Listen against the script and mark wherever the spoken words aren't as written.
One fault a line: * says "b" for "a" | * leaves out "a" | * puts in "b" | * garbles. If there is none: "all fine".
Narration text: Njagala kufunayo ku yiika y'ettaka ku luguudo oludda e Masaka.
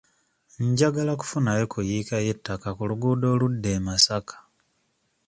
all fine